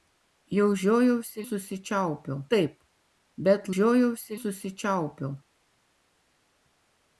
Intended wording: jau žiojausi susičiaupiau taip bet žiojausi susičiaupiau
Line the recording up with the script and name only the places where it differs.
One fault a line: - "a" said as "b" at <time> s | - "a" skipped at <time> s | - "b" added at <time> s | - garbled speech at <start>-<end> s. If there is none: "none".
none